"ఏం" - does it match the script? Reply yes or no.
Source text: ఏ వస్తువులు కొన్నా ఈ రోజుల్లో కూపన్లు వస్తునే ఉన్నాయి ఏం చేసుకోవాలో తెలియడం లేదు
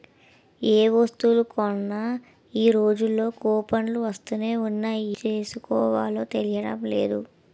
no